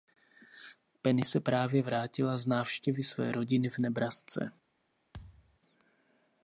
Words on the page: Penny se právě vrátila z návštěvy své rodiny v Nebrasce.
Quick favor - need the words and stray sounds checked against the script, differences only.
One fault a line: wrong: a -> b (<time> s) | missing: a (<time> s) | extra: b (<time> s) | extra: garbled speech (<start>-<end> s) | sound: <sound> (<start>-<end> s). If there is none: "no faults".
sound: thud (5.1-5.6 s)